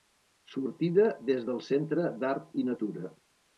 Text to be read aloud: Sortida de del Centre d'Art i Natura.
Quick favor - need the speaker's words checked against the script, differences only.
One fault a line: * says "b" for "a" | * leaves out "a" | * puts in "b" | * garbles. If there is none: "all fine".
* says "des" for "de"